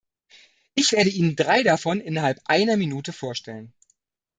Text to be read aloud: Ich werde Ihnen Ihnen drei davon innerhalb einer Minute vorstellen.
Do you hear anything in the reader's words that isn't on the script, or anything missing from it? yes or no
yes